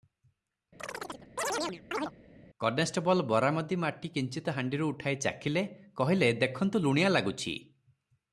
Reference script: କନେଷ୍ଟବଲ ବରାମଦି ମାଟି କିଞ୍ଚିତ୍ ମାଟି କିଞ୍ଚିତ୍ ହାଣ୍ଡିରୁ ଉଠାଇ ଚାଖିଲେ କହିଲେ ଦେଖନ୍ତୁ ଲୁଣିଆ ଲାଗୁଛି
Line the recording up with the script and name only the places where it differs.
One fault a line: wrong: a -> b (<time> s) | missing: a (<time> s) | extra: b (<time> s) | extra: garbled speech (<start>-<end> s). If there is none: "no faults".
missing: ମାଟି କିଞ୍ଚିତ୍ (4.5 s)